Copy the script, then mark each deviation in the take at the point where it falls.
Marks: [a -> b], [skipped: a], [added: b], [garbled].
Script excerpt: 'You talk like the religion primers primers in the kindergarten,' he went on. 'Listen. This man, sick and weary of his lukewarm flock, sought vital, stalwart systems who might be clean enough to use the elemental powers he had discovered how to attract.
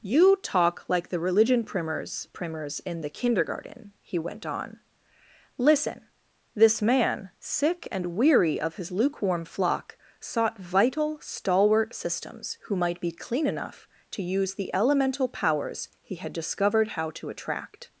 'You talk like the religion primers primers in the kindergarten,' he went on. 'Listen. This man, sick and weary of his lukewarm flock, sought vital, stalwart systems who might be clean enough to use the elemental powers he had discovered how to attract.